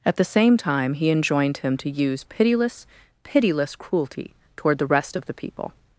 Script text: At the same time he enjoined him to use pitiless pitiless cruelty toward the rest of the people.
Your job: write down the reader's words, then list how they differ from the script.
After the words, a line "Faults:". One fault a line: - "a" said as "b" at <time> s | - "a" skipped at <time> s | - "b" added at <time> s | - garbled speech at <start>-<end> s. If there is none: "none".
At the same time he enjoined him to use pitiless pitiless cruelty toward the rest of the people.
Faults:
none